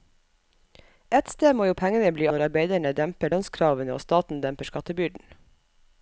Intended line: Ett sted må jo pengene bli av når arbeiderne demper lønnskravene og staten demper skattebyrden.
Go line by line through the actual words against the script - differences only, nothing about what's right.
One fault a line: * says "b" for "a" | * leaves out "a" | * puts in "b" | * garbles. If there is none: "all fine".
* leaves out "av"